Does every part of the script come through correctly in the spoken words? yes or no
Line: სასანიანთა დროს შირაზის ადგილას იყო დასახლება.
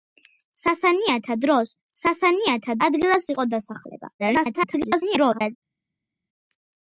no